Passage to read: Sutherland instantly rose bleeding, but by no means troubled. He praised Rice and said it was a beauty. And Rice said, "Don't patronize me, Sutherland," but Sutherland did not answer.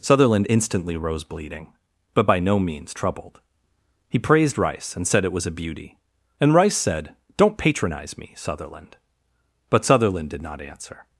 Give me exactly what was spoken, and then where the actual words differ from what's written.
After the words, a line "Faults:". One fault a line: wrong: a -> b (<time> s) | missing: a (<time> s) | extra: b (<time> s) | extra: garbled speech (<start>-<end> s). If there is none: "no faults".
Sutherland instantly rose bleeding, but by no means troubled. He praised Rice and said it was a beauty. And Rice said, "Don't patronize me, Sutherland," but Sutherland did not answer.
Faults:
no faults